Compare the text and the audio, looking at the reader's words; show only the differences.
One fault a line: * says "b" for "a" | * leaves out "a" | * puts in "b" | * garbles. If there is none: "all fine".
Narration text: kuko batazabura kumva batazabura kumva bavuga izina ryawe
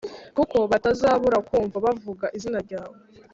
* leaves out "batazabura kumva"